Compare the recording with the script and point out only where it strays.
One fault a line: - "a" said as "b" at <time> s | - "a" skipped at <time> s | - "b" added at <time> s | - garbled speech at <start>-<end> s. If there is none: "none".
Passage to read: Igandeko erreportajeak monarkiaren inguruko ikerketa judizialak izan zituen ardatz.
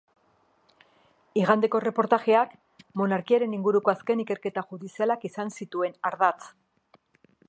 - "azken" added at 4.0 s